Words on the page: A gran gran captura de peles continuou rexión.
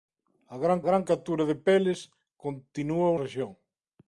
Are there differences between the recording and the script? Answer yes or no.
no